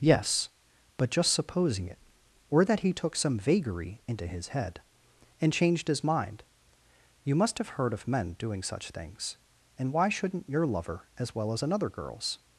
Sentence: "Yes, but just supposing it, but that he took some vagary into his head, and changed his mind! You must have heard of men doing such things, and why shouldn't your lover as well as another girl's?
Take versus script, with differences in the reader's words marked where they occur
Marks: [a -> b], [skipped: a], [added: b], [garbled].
"Yes, but just supposing it, [but -> or] that he took some vagary into his head, and changed his mind! You must have heard of men doing such things, and why shouldn't your lover as well as another girl's?